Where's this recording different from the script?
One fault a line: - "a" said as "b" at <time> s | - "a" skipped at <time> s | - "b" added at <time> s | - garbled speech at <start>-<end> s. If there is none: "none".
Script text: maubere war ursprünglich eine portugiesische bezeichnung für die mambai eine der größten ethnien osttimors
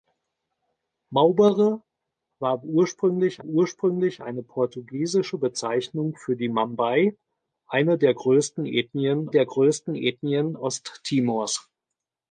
- "ursprünglich" added at 3.4 s
- "der größten ethnien" added at 9.3 s